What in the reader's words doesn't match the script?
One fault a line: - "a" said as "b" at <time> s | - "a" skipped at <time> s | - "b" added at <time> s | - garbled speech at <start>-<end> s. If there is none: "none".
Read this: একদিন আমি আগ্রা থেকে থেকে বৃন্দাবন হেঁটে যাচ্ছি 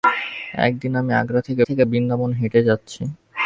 none